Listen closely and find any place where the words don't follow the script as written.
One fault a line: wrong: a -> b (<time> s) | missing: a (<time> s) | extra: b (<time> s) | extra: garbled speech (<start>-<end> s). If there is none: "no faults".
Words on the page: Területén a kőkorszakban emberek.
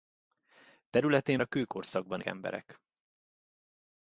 no faults